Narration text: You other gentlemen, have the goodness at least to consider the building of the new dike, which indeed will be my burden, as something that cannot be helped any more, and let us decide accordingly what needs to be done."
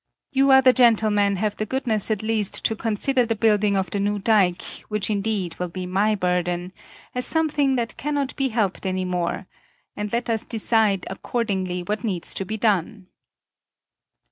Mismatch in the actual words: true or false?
false